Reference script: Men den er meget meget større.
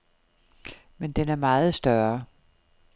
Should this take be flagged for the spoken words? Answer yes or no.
yes